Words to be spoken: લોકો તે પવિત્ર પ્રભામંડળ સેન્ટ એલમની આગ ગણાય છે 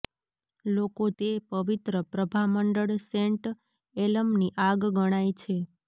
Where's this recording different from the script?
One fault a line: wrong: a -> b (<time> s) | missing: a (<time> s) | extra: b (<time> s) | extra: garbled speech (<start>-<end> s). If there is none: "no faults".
no faults